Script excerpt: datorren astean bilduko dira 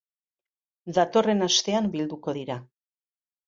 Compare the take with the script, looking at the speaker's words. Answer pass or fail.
pass